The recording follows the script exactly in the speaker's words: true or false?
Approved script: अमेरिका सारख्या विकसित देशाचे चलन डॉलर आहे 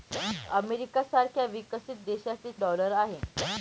false